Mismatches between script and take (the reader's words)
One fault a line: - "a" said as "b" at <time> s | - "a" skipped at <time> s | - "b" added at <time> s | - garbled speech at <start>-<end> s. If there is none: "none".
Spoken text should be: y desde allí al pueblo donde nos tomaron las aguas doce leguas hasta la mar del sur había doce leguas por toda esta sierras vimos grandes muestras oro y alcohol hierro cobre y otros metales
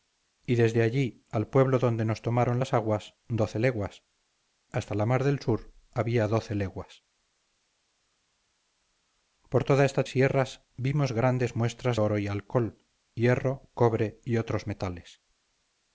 none